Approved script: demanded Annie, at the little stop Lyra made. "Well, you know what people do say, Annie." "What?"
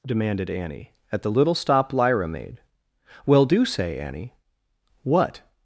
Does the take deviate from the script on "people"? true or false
true